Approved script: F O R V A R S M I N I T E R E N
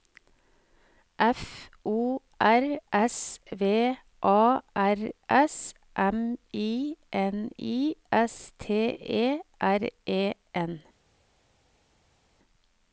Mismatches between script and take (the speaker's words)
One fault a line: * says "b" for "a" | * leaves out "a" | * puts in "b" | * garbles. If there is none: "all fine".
* puts in "S"
* puts in "S"